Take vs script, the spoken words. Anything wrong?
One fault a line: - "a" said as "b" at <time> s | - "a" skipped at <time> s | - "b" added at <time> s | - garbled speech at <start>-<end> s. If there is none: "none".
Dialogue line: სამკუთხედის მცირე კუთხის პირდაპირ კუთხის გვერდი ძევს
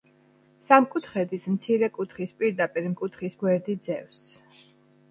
none